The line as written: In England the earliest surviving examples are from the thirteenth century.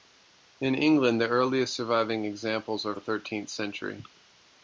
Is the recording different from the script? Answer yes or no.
yes